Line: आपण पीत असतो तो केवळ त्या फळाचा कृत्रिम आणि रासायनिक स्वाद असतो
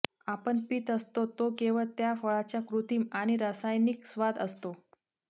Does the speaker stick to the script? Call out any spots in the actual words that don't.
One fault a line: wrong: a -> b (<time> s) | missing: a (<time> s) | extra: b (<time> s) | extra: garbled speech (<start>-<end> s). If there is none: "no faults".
no faults